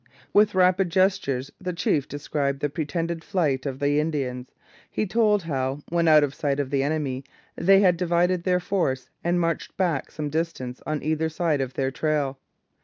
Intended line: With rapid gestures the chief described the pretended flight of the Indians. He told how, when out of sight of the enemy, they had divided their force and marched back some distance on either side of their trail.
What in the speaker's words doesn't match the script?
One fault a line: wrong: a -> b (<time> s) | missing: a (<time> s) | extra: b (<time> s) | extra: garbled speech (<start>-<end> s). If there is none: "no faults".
no faults